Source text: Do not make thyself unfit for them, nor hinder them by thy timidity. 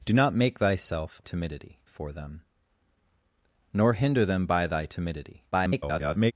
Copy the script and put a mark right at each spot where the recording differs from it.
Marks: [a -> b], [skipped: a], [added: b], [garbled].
Do not make thyself [unfit -> timidity] for them, nor hinder them by thy timidity. [garbled]